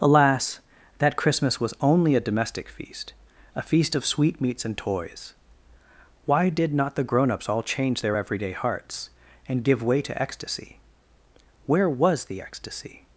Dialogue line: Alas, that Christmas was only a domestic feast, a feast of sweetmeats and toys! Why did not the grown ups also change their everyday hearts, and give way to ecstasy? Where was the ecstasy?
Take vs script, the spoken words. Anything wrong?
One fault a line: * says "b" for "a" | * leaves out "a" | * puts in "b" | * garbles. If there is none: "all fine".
* says "all" for "also"